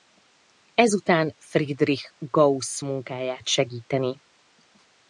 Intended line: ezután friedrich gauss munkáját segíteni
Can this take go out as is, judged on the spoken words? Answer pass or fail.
pass